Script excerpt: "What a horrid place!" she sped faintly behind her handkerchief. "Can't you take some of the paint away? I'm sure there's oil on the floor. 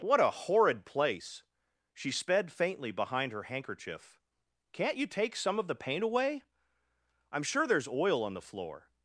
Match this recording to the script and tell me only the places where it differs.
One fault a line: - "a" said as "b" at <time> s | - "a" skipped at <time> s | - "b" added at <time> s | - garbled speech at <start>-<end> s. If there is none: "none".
none